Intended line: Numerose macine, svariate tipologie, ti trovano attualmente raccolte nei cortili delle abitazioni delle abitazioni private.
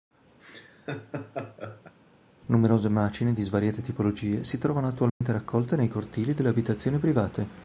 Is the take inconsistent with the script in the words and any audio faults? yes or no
yes